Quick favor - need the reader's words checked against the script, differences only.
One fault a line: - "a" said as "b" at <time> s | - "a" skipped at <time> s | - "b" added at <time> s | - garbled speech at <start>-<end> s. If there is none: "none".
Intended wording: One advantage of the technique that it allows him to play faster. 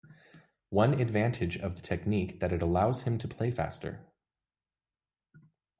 none